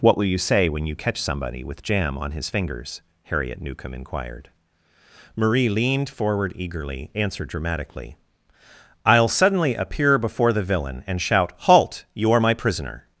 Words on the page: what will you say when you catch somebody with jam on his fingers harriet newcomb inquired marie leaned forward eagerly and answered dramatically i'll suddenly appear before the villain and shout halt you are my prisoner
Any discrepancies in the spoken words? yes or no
yes